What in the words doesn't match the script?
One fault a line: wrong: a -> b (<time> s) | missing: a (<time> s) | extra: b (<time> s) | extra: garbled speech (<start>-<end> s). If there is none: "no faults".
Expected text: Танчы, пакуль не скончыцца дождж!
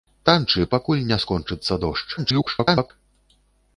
extra: garbled speech (2.2-2.9 s)